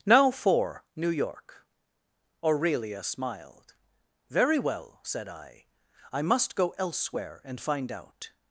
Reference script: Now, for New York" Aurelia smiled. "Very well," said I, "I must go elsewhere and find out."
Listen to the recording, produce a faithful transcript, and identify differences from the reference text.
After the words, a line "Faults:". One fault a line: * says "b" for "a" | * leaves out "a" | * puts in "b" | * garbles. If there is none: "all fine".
Now, for New York" Aurelia smiled. "Very well," said I, "I must go elsewhere and find out."
Faults:
all fine